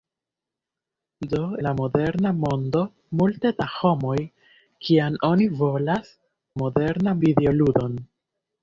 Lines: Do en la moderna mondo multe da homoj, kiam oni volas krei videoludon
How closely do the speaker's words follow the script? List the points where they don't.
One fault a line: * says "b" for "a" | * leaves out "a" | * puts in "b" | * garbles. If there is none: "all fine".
* leaves out "en"
* says "moderna" for "krei"